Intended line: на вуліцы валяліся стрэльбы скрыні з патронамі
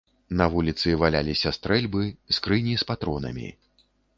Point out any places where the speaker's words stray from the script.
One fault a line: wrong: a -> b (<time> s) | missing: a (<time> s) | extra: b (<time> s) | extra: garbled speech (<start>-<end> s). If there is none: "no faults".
no faults